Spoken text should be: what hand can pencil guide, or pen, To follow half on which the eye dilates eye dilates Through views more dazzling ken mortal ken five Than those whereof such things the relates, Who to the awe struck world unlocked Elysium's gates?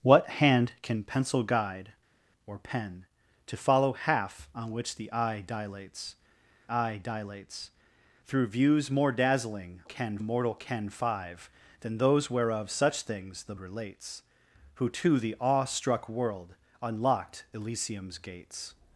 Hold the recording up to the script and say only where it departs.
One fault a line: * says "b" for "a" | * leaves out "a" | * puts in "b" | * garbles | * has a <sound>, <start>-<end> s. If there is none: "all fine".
all fine